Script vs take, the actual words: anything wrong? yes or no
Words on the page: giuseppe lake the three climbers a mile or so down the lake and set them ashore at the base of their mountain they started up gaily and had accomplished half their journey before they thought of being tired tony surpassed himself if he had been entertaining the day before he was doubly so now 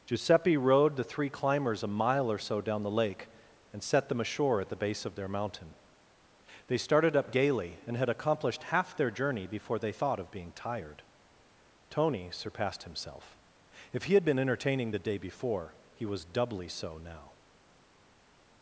yes